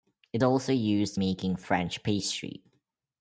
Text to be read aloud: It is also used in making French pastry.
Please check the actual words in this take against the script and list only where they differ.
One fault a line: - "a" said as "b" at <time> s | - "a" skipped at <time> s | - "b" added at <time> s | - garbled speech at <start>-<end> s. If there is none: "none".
- "is" skipped at 0.4 s
- "in" skipped at 1.2 s